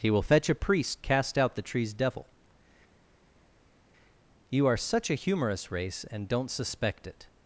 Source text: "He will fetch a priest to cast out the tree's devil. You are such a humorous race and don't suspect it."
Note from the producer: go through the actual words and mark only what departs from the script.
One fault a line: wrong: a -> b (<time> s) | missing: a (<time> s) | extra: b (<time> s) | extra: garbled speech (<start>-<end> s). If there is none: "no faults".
missing: to (1.0 s)